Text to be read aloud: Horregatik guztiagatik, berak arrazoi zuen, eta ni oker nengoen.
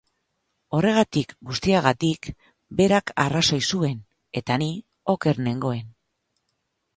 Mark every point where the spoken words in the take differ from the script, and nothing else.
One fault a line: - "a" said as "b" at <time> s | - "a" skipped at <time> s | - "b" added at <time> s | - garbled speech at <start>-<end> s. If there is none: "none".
none